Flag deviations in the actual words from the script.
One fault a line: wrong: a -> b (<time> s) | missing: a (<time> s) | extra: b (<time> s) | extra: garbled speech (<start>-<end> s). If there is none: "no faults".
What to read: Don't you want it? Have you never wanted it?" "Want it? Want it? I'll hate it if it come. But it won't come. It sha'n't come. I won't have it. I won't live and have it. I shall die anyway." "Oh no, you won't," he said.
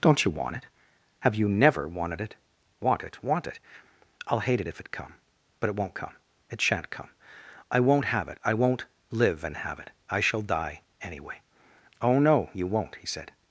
no faults